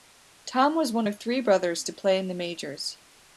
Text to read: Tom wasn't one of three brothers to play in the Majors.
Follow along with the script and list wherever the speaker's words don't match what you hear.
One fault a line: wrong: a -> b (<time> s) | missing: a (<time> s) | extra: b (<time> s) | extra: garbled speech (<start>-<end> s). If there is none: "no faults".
wrong: wasn't -> was (0.8 s)